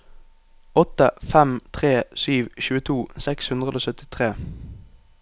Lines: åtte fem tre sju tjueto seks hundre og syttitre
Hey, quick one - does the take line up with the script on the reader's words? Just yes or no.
yes